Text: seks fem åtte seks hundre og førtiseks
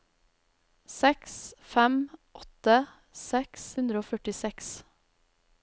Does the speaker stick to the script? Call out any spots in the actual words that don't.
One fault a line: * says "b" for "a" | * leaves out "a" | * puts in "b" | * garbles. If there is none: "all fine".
all fine